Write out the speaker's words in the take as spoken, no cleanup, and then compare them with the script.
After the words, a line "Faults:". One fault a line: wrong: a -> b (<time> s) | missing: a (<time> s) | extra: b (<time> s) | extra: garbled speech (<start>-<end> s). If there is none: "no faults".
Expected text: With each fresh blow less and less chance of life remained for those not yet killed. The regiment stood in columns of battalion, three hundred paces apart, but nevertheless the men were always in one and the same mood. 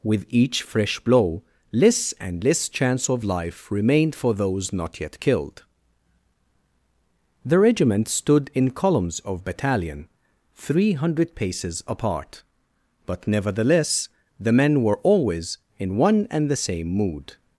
With each fresh blow less and less chance of life remained for those not yet killed. The regiment stood in columns of battalion, three hundred paces apart, but nevertheless the men were always in one and the same mood.
Faults:
no faults